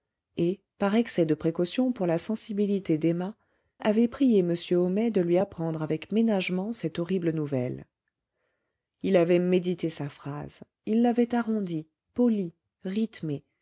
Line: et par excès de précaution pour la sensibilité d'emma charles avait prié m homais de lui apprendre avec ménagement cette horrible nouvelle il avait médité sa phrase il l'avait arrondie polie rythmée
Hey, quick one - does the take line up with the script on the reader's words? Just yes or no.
no